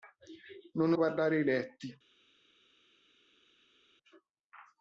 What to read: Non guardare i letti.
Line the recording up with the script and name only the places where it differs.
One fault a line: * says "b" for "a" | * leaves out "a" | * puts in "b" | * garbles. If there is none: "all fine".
all fine